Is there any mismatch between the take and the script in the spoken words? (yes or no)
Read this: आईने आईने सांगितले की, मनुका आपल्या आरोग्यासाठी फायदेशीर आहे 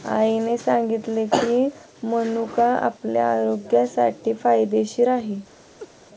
yes